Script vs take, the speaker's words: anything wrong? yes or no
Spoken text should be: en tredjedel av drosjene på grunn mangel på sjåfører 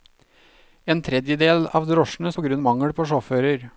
no